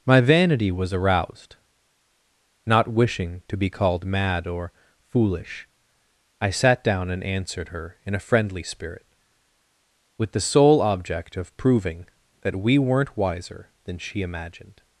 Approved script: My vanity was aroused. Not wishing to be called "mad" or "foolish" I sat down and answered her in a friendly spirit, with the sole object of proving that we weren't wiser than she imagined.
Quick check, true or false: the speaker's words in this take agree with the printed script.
true